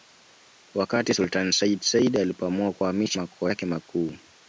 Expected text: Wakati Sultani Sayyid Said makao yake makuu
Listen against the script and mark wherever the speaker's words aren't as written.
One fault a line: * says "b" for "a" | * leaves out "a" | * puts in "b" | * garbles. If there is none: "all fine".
* puts in "alipoamua kuhamisha"